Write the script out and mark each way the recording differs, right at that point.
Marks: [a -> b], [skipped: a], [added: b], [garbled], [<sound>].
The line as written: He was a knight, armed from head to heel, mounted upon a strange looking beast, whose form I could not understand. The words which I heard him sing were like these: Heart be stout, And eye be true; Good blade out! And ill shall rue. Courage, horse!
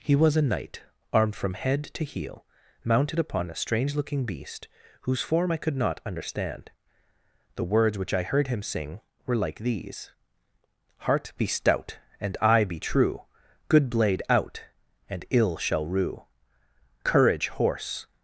He was a knight, armed from head to heel, mounted upon a strange looking beast, whose form I could not understand. The words which I heard him sing were like these: Heart be stout, And eye be true; Good blade out! And ill shall rue. Courage, horse!